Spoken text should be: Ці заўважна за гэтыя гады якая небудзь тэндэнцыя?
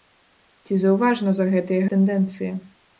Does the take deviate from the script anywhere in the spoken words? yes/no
yes